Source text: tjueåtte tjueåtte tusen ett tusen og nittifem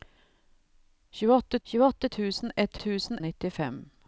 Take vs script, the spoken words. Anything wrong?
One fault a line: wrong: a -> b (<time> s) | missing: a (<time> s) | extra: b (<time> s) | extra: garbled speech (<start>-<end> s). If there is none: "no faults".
no faults